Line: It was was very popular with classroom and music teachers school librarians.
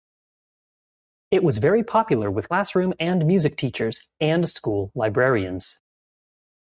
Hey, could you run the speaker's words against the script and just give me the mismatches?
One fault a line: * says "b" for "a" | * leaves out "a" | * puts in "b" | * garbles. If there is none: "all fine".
* leaves out "was"
* puts in "and"